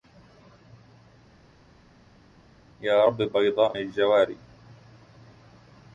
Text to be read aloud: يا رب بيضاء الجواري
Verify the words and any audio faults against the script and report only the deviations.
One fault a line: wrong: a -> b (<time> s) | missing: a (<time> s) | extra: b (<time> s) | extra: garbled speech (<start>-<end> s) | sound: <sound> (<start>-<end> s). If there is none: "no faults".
no faults